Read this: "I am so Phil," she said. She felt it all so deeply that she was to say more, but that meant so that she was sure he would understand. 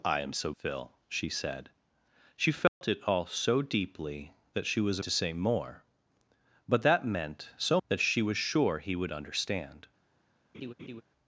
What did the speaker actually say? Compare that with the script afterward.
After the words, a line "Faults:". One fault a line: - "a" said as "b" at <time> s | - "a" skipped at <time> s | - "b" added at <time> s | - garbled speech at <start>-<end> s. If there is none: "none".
"I am so Phil," she said. She felt it all so deeply that she was to say more, but that meant so that she was sure he would understand.
Faults:
none